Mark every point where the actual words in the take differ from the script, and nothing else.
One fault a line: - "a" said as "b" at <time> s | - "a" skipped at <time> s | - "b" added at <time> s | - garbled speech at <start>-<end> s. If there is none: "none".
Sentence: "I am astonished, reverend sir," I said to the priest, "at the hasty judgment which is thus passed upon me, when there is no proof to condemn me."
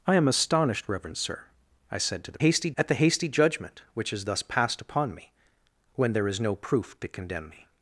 - "priest" said as "hasty" at 2.4 s